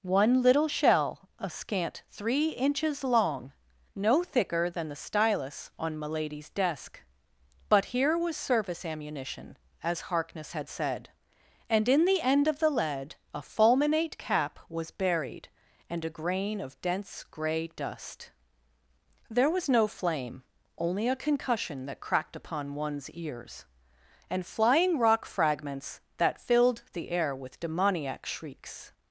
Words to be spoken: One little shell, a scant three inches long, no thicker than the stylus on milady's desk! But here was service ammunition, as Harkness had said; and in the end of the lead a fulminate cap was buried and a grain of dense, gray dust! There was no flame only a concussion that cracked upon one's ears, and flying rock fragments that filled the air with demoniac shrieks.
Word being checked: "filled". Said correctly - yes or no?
yes